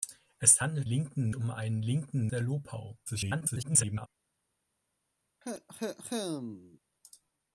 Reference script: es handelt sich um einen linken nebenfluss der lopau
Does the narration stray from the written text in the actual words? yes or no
yes